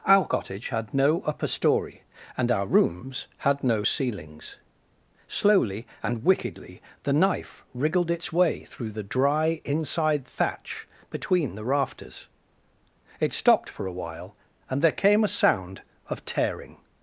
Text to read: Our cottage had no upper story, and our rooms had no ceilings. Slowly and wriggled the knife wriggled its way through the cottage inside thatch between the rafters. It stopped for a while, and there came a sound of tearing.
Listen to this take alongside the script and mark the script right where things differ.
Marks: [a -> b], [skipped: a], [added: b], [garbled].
Our cottage had no upper story, and our rooms had no ceilings. Slowly and [wriggled -> wickedly] the knife wriggled its way through the [cottage -> dry] inside thatch between the rafters. It stopped for a while, and there came a sound of tearing.